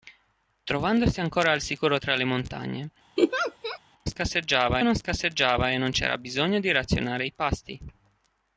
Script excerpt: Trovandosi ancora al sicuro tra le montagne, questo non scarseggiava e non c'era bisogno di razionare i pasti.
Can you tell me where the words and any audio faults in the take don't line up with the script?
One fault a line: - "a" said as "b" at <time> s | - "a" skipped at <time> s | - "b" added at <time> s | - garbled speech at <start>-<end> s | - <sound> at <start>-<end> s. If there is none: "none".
- laugh at 3.2-3.8 s
- "questo" said as "scarseggiava" at 4.1 s